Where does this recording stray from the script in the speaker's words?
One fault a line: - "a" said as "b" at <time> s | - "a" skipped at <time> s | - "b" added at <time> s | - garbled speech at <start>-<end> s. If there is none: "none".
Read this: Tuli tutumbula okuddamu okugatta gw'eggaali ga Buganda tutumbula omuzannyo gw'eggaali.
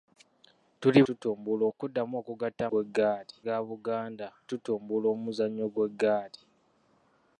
none